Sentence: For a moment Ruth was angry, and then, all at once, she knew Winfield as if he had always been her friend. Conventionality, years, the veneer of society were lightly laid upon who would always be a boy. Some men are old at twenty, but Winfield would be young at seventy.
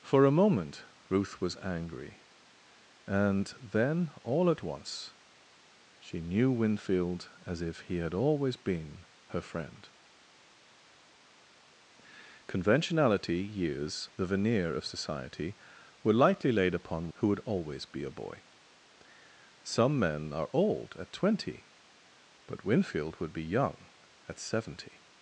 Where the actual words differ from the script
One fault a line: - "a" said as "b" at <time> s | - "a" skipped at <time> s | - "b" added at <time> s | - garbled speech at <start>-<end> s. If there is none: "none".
none